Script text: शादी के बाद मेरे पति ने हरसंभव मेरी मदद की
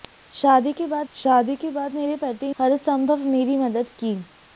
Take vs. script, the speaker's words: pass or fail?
fail